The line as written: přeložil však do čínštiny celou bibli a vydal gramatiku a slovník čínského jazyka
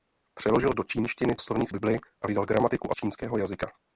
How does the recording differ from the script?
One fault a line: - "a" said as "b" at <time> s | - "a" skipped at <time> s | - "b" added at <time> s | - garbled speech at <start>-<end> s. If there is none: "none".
- "však" skipped at 0.7 s
- "celou" said as "slovník" at 1.4 s
- "slovník" skipped at 2.9 s